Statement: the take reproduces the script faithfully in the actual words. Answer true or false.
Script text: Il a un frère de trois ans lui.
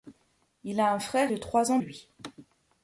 true